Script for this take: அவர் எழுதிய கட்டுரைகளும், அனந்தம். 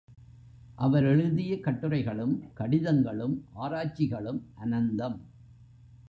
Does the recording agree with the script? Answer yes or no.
no